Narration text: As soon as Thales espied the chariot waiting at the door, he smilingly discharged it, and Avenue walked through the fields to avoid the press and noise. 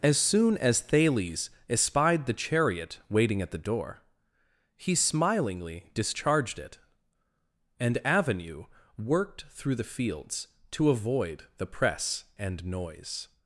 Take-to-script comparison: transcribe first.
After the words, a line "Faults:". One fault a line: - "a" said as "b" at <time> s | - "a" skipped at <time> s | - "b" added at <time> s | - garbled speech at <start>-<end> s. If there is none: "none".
As soon as Thales espied the chariot waiting at the door, he smilingly discharged it, and Avenue worked through the fields to avoid the press and noise.
Faults:
- "walked" said as "worked" at 9.0 s